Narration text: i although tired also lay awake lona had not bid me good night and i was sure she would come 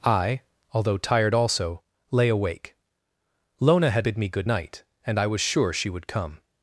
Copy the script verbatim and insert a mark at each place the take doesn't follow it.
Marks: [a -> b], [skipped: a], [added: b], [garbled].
i although tired also lay awake lona had [skipped: not] bid me good night and i was sure she would come